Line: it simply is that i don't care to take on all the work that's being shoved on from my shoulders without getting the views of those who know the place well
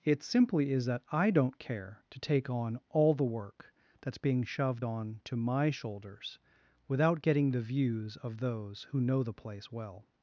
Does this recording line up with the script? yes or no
no